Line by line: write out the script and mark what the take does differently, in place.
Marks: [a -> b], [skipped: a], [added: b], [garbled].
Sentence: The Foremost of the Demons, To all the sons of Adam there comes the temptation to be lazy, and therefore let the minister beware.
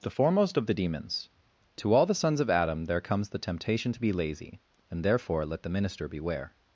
The Foremost of the Demons, To all the sons of Adam there comes the temptation to be lazy, and therefore let the minister beware.